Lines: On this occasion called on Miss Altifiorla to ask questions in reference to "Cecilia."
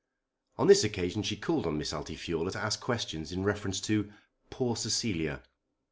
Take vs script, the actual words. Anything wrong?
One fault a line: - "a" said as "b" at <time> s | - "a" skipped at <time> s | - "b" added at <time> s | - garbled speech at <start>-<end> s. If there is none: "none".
- "she" added at 1.2 s
- "poor" added at 4.5 s